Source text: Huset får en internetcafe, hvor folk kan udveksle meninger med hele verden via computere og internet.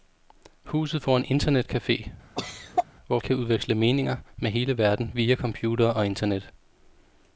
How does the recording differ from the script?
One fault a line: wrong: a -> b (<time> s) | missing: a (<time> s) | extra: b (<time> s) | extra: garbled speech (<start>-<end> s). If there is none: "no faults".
missing: folk (3.2 s)